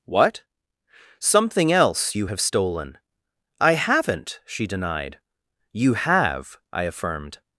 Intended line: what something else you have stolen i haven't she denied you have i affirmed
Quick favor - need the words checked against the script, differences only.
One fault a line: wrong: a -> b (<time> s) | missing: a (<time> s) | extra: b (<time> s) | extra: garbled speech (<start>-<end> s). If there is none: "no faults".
no faults